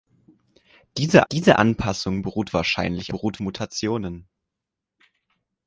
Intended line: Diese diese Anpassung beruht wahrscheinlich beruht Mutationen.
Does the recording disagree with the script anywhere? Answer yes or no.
no